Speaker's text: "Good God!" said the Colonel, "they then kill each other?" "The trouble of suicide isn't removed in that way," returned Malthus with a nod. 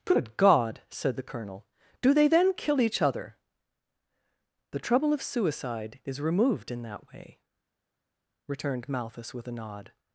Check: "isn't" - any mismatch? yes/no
yes